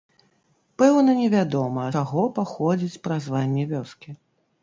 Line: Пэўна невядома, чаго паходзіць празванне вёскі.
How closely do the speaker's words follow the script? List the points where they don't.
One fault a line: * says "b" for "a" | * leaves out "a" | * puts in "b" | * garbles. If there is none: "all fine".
all fine